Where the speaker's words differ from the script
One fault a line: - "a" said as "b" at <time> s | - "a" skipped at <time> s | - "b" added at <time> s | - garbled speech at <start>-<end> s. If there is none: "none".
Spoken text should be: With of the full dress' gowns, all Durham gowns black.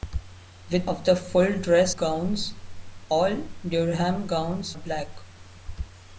none